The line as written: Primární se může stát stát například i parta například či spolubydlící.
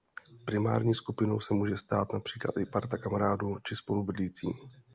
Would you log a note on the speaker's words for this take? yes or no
yes